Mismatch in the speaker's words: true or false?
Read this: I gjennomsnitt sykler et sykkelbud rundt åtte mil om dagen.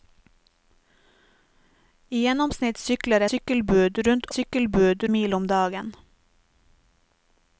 true